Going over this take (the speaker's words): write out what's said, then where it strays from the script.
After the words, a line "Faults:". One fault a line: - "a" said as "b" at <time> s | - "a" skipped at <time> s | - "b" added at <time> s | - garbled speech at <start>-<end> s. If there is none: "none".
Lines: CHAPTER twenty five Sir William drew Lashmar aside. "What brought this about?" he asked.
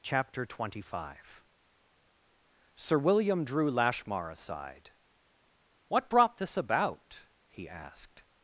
CHAPTER twenty five Sir William drew Lashmar aside. "What brought this about?" he asked.
Faults:
none